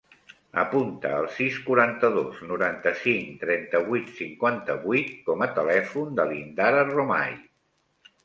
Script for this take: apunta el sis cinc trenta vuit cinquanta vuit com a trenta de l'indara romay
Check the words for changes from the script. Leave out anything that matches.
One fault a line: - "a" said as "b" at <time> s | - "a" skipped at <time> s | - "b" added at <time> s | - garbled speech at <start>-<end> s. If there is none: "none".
- "quaranta dos noranta" added at 1.6 s
- "trenta" said as "telèfon" at 5.6 s